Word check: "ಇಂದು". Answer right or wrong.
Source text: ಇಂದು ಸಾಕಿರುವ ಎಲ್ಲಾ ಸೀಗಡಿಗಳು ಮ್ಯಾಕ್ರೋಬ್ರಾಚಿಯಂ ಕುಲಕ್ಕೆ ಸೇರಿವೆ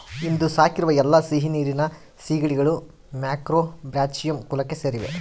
right